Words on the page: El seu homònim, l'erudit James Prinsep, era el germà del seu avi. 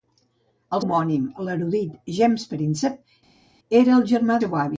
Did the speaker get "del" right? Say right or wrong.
wrong